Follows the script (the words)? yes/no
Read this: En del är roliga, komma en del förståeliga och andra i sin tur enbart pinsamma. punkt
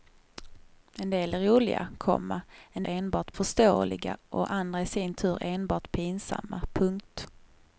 no